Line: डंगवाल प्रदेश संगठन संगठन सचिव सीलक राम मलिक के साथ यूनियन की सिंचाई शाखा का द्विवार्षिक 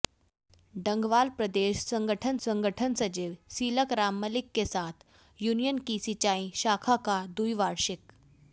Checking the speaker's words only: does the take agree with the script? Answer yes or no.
yes